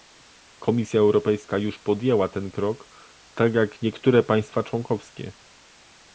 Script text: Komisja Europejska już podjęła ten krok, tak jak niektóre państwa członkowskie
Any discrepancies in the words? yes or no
no